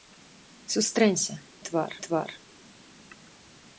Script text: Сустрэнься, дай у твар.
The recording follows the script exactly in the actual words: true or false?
false